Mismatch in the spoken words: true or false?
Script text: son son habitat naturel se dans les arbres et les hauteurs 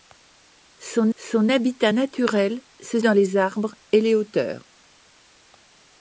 false